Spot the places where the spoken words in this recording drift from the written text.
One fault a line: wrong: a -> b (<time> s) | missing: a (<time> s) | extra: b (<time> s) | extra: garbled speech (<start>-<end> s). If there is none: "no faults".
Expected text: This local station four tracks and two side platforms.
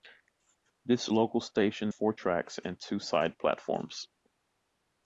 no faults